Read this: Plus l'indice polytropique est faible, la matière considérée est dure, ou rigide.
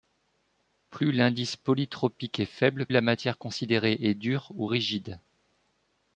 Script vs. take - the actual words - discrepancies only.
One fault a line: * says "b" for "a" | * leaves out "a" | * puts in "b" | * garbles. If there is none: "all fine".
all fine